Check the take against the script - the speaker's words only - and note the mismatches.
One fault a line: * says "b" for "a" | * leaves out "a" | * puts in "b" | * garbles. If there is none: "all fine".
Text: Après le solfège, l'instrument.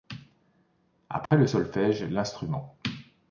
all fine